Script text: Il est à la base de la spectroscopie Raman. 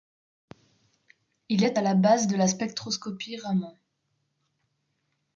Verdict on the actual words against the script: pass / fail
pass